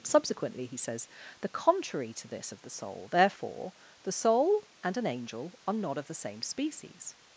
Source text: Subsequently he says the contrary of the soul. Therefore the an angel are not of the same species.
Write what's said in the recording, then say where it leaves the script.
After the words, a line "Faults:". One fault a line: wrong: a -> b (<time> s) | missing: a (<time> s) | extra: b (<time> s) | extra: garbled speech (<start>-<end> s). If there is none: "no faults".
Subsequently he says the contrary to this of the soul. Therefore the soul and an angel are not of the same species.
Faults:
extra: to this (2.1 s)
extra: soul and (4.1 s)